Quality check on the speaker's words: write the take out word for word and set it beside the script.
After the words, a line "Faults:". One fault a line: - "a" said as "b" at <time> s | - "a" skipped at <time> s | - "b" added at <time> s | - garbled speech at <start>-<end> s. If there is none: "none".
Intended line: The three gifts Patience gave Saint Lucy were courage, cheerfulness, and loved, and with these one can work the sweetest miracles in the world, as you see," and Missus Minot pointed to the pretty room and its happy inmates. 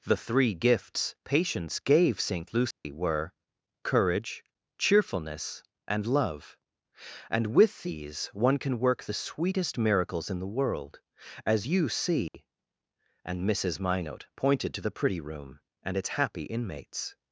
The three gifts Patience gave Saint Lucy were courage, cheerfulness, and love, and with these one can work the sweetest miracles in the world, as you see," and Missus Minot pointed to the pretty room and its happy inmates.
Faults:
- "loved" said as "love" at 6.1 s